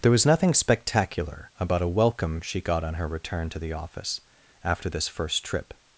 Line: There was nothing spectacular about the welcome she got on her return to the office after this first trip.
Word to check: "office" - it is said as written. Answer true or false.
true